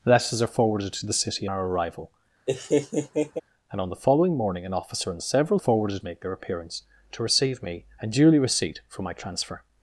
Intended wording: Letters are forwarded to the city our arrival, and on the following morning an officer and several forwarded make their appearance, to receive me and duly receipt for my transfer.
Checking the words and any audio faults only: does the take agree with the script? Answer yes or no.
no